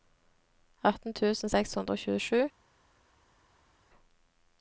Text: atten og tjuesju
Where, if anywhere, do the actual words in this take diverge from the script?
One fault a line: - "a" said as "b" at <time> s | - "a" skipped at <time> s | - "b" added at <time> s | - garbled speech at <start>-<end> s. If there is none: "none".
- "tusen seks hundre" added at 1.2 s